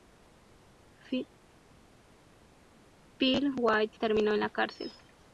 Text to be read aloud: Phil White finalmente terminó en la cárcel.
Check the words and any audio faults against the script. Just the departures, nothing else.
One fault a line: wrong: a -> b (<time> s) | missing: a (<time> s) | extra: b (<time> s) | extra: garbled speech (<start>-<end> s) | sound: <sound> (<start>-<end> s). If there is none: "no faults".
missing: finalmente (4.0 s)